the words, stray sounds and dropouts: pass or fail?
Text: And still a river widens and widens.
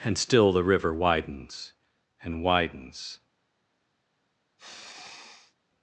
fail